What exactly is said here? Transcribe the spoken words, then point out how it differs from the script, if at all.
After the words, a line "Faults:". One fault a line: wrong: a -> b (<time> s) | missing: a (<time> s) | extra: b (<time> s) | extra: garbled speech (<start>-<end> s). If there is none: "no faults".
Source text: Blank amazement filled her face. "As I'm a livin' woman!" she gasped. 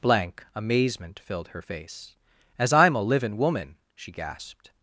Blank amazement filled her face. "As I'm a livin' woman!" she gasped.
Faults:
no faults